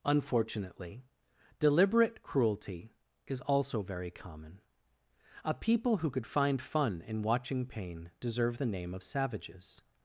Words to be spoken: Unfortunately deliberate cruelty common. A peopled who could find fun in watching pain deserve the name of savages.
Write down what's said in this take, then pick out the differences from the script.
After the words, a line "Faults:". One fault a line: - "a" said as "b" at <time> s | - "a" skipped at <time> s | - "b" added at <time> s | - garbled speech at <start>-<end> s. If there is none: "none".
Unfortunately deliberate cruelty is also very common. A people who could find fun in watching pain deserve the name of savages.
Faults:
- "is also very" added at 3.3 s
- "peopled" said as "people" at 5.5 s